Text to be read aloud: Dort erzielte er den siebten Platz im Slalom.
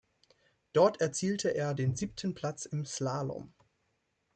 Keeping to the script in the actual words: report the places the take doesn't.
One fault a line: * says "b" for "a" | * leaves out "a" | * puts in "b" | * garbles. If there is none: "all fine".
all fine